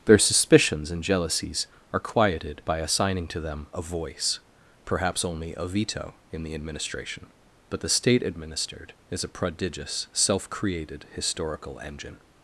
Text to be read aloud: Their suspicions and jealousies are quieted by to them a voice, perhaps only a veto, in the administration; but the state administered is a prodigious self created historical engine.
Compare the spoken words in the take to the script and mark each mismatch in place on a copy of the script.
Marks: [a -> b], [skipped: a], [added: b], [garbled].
Their suspicions and jealousies are quieted by [added: assigning] to them a voice, perhaps only a veto, in the administration; but the state administered is a prodigious self created historical engine.